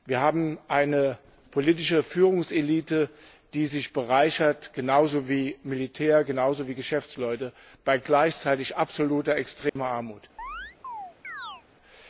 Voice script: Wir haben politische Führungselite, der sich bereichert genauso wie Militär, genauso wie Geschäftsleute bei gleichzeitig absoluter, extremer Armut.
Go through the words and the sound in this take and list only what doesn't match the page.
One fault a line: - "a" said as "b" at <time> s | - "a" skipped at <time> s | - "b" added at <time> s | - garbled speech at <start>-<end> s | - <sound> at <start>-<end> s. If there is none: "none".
- "eine" added at 0.7 s
- "der" said as "die" at 3.5 s
- dropout at 9.7-9.8 s
- chirp at 10.4-11.6 s